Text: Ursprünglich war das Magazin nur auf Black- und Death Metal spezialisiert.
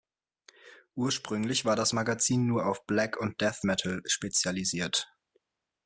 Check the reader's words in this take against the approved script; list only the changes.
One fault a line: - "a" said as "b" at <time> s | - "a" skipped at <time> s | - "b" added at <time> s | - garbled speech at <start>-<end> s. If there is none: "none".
none